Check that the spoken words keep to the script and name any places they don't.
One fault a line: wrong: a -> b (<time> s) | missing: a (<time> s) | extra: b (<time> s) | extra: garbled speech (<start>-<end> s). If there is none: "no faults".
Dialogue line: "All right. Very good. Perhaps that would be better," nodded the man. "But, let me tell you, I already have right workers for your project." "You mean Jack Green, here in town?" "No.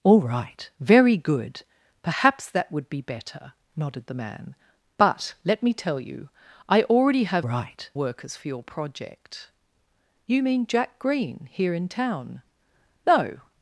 no faults